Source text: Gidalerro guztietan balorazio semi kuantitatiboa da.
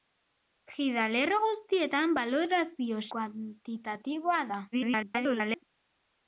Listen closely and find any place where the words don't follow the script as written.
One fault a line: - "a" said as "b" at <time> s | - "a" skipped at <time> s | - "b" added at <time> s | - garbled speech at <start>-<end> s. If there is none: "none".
- "semi" skipped at 3.0 s
- garbled speech at 4.7-5.6 s